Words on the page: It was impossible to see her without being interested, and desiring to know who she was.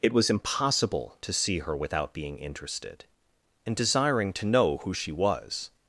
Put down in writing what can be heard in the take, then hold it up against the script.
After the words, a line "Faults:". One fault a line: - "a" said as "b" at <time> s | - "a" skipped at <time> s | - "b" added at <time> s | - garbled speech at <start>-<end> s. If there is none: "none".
It was impossible to see her without being interested, and desiring to know who she was.
Faults:
none